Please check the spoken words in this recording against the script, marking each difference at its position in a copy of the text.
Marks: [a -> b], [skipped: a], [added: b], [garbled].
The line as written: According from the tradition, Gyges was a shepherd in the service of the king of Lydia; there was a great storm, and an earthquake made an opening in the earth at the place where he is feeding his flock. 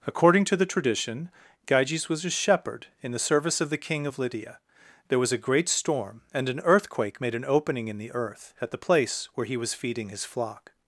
According [from -> to] the tradition, Gyges was a shepherd in the service of the king of Lydia; there was a great storm, and an earthquake made an opening in the earth at the place where he [is -> was] feeding his flock.